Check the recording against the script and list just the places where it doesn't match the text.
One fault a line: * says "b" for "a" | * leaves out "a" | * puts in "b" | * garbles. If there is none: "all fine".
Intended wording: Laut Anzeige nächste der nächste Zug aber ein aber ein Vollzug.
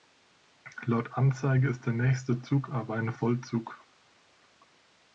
* says "ist" for "nächste"
* leaves out "aber ein"